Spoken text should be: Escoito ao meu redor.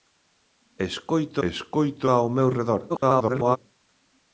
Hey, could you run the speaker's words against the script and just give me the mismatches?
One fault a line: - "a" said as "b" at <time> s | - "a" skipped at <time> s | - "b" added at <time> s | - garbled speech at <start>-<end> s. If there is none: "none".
- "escoito" added at 1.5 s
- garbled speech at 2.9-3.6 s